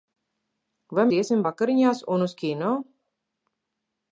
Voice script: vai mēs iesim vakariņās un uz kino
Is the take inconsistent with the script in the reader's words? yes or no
yes